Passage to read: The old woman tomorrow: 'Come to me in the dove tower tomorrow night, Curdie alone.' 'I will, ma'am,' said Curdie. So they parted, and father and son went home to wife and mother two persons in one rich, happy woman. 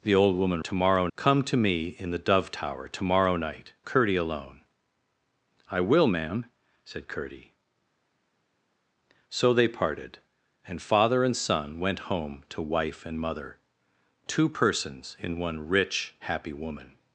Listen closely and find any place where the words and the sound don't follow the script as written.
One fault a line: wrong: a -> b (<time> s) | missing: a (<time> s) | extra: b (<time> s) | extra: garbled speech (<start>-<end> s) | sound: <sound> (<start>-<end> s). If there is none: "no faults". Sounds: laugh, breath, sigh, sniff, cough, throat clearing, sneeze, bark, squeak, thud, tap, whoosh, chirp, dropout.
no faults